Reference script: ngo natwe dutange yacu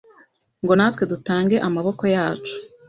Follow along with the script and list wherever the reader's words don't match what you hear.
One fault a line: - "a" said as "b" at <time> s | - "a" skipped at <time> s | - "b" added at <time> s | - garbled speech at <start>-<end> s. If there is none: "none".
- "amaboko" added at 1.7 s